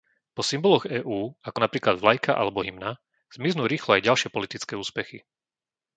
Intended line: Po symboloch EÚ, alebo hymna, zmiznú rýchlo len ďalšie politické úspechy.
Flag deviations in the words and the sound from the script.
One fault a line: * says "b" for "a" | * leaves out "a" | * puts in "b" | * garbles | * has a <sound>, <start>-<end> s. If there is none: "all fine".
* puts in "ako napríklad vlajka"
* says "aj" for "len"